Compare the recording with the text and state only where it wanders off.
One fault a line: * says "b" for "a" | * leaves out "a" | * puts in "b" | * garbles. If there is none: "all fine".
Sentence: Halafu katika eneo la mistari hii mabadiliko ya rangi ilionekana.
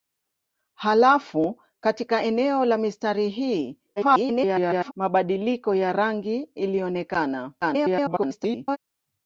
* garbles
* garbles